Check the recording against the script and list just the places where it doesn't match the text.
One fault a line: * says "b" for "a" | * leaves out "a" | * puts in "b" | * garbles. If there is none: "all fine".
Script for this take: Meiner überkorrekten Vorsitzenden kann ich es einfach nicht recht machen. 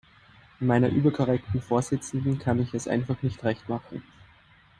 all fine